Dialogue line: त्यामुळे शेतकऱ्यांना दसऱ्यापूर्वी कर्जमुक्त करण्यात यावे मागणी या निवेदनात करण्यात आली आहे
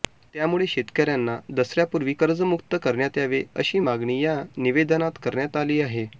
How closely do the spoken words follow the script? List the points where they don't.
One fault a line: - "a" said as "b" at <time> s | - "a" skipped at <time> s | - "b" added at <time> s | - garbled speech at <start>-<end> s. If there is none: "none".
- "अशी" added at 3.6 s